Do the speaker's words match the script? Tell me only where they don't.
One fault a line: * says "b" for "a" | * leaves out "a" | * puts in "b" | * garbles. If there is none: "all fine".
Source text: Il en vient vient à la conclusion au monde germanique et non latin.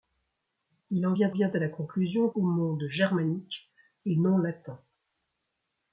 all fine